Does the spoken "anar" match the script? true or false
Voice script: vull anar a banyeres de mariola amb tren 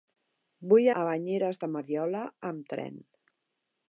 false